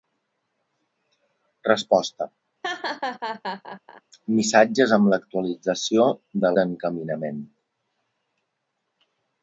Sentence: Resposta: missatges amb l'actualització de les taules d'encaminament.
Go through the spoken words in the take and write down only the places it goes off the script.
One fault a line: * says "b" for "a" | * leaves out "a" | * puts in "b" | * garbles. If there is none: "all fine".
* leaves out "les taules"